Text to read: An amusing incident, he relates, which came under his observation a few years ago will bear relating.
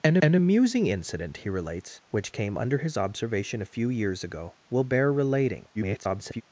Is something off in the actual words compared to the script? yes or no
yes